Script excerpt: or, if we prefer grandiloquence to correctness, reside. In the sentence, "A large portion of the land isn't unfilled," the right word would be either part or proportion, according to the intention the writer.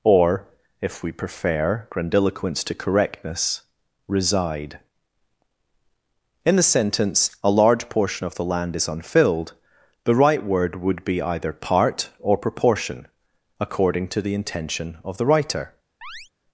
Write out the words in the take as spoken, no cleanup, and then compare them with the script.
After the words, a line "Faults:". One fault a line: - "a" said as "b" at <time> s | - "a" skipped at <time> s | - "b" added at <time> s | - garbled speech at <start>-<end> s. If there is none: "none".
or, if we prefer grandiloquence to correctness, reside. In the sentence, "A large portion of the land is unfilled," the right word would be either part or proportion, according to the intention of the writer.
Faults:
- "isn't" said as "is" at 8.8 s
- "of" added at 15.0 s